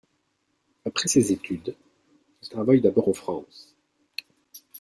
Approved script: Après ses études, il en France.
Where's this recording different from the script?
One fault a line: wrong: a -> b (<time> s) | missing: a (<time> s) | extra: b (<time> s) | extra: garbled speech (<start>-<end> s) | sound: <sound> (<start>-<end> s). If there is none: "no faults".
extra: travaille d'abord (2.5 s)